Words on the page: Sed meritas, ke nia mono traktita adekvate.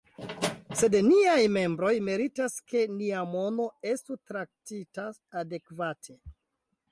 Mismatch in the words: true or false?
true